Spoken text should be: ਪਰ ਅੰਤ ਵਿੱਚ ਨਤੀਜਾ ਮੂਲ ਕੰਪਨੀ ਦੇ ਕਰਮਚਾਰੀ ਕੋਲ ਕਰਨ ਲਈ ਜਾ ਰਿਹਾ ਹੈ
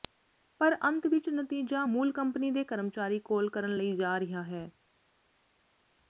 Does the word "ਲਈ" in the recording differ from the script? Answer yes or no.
no